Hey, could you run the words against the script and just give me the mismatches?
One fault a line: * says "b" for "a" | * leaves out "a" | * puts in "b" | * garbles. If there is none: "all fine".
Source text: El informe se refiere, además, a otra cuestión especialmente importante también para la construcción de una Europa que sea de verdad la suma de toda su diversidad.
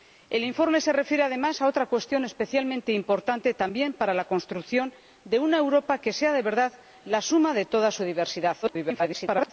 * garbles